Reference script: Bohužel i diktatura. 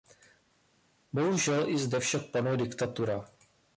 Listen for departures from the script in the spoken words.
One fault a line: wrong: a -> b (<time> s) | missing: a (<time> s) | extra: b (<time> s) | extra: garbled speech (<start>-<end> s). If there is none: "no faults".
extra: zde však panuje (1.8 s)